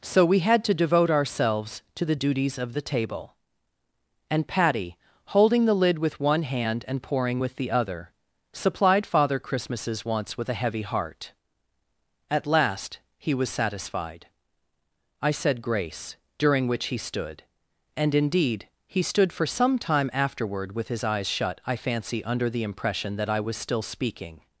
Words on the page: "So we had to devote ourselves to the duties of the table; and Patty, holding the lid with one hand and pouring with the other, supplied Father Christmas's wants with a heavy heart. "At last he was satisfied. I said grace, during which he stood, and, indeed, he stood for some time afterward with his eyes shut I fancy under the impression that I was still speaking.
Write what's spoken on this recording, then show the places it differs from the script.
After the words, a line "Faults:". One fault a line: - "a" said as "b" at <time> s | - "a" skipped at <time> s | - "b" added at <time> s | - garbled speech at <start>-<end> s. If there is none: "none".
"So we had to devote ourselves to the duties of the table; and Patty, holding the lid with one hand and pouring with the other, supplied Father Christmas's wants with a heavy heart. "At last he was satisfied. I said grace, during which he stood, and, indeed, he stood for some time afterward with his eyes shut I fancy under the impression that I was still speaking.
Faults:
none